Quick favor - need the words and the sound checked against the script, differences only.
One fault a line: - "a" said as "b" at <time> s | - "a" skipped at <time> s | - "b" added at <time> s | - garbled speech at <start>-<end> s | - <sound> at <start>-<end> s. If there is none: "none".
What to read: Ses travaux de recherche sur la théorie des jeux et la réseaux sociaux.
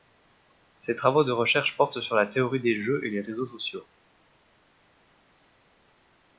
- "portent" added at 1.8 s
- "la" said as "les" at 3.1 s